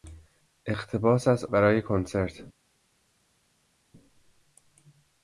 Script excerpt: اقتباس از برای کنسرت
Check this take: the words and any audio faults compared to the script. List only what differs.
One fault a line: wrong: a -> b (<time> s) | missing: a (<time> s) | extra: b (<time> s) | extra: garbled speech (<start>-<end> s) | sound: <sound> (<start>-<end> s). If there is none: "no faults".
no faults